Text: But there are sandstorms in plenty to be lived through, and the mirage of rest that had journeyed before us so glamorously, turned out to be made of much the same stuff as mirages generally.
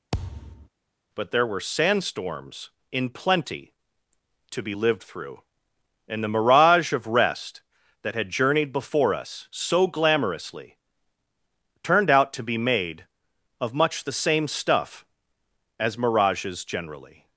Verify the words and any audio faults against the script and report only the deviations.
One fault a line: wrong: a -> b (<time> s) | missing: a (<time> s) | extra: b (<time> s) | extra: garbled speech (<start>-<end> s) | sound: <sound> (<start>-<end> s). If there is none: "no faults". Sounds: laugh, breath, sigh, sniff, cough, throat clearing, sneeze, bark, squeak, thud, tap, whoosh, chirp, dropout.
sound: thud (0.1-0.7 s)
wrong: are -> were (1.5 s)